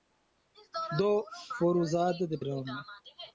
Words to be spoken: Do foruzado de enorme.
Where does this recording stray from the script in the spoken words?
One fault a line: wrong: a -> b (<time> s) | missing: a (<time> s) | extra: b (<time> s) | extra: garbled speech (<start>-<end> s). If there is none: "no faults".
no faults